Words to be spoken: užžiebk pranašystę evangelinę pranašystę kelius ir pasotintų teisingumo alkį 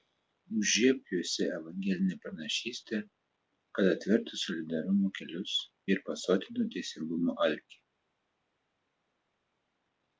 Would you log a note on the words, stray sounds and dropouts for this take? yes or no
yes